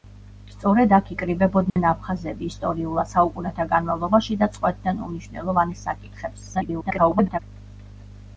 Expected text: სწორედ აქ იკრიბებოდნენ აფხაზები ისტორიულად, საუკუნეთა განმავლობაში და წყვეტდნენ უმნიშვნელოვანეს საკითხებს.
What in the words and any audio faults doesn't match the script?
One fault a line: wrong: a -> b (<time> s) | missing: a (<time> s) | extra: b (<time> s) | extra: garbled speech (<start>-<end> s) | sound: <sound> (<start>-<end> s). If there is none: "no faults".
sound: dropout (1.7-1.8 s)
extra: garbled speech (6.5-7.4 s)